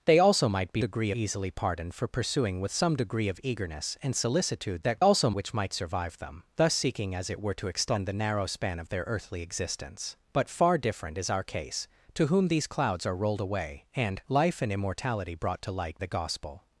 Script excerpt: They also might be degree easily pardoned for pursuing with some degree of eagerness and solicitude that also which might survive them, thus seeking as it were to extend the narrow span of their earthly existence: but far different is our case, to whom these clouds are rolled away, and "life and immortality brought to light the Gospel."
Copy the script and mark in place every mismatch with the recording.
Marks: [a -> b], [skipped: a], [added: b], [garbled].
They also might be degree easily pardoned for pursuing with some degree of eagerness and solicitude that also which might survive them, thus seeking as it were to extend the narrow span of their earthly existence: but far different is our case, to whom these clouds are rolled away, and "life and immortality brought to light the Gospel."